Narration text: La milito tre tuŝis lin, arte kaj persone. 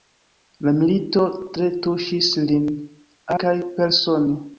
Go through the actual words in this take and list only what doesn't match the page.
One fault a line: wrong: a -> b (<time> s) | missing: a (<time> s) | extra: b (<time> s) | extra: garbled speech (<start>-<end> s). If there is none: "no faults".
missing: arte (2.7 s)